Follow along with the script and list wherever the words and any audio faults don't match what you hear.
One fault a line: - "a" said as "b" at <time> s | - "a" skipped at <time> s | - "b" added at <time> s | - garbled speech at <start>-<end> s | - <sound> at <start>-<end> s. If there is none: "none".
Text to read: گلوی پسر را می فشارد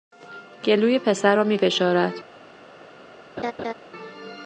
- laugh at 3.4-3.7 s